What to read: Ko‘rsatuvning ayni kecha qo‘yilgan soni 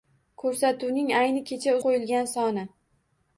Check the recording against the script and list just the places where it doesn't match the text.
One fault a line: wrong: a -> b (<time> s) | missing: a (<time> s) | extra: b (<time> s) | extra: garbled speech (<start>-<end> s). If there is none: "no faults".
no faults